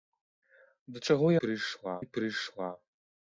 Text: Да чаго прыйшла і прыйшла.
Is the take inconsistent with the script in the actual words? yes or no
no